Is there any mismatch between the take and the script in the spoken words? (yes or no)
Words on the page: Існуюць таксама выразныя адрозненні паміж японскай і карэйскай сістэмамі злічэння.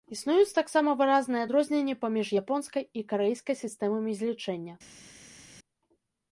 no